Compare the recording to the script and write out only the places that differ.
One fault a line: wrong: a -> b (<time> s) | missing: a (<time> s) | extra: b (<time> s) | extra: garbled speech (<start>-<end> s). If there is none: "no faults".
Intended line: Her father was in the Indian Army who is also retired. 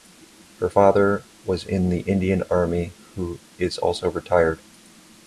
no faults